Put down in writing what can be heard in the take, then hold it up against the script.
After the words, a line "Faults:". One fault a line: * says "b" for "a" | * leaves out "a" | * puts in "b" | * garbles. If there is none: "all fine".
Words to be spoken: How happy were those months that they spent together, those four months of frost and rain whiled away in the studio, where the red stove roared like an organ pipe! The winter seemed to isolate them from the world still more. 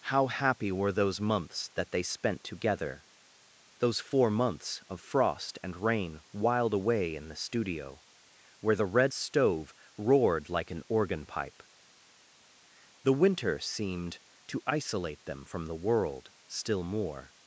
How happy were those months that they spent together, those four months of frost and rain whiled away in the studio, where the red stove roared like an organ pipe! The winter seemed to isolate them from the world still more.
Faults:
all fine